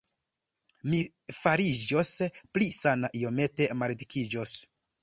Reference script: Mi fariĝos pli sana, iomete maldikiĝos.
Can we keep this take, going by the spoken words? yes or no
yes